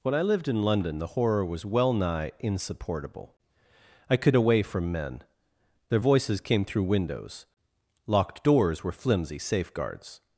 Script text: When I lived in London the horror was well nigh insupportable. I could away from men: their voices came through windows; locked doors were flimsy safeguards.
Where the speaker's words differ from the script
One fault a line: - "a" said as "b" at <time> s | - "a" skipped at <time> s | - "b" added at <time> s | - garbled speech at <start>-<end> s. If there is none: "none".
none